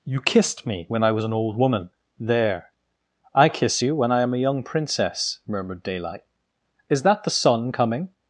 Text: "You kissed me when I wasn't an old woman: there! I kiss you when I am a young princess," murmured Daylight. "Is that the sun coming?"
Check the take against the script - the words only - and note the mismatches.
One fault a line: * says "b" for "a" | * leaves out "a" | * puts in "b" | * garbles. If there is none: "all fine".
* says "was" for "wasn't"